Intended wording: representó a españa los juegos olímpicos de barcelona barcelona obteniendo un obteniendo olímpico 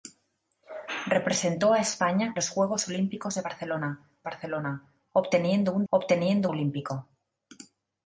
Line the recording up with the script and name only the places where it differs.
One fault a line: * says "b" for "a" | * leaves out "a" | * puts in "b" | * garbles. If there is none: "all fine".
all fine